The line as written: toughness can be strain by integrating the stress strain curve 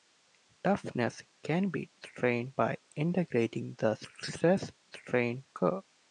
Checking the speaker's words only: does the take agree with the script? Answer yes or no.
yes